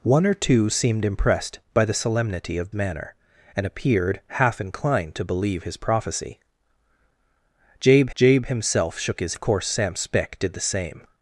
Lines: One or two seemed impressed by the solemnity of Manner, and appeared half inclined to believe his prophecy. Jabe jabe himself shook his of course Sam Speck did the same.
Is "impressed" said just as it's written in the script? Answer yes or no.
yes